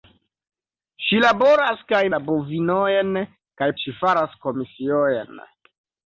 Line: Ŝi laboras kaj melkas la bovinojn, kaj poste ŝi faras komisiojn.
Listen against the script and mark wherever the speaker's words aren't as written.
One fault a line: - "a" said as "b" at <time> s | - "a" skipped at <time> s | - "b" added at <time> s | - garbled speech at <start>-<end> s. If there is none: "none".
- "melkas" skipped at 2.0 s
- "poste" skipped at 3.7 s